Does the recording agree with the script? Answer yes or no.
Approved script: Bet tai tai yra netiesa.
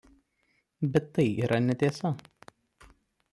no